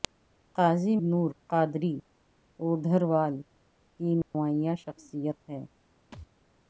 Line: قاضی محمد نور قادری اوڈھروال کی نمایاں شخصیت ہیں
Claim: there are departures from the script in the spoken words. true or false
true